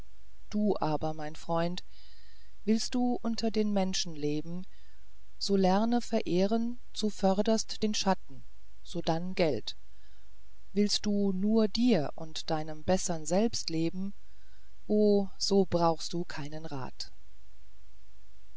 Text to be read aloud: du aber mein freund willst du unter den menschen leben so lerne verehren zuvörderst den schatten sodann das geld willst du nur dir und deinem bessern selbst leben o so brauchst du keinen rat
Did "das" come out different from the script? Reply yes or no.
yes